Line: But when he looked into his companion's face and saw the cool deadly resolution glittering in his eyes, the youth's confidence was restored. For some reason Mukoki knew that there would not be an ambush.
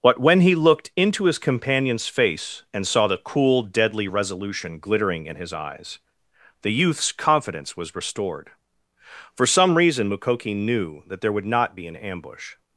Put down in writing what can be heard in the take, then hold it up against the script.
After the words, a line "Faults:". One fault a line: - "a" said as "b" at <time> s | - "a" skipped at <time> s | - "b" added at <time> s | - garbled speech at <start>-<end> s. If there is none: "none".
But when he looked into his companion's face and saw the cool deadly resolution glittering in his eyes, the youth's confidence was restored. For some reason Mukoki knew that there would not be an ambush.
Faults:
none